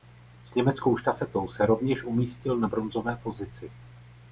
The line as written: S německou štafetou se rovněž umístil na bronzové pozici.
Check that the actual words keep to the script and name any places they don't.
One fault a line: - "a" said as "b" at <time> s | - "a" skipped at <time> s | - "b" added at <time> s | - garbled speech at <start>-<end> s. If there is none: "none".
none